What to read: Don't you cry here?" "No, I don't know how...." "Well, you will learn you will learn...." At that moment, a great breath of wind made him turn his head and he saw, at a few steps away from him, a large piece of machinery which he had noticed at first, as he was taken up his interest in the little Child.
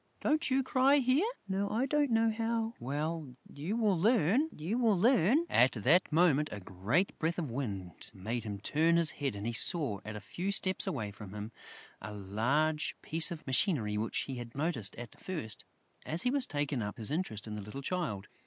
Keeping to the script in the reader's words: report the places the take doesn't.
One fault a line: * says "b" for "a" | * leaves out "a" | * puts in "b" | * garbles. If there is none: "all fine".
all fine